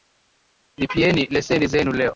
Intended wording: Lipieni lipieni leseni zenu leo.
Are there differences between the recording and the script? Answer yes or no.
yes